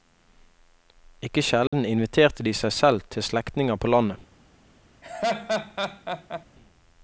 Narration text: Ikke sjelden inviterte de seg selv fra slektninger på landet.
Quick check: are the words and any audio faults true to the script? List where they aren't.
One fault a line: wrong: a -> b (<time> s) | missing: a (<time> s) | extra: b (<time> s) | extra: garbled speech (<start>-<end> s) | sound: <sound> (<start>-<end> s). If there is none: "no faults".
sound: dropout (1.7-1.7 s)
wrong: fra -> til (3.1 s)
sound: laugh (5.0-6.5 s)